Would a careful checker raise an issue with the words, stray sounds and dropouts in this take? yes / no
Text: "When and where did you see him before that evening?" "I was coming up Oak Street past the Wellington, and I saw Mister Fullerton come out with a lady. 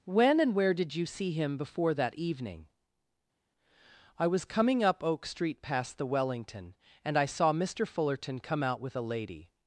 no